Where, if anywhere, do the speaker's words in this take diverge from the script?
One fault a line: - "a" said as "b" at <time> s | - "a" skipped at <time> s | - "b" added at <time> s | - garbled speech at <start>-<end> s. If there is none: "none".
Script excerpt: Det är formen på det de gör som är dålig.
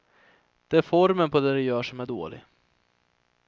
none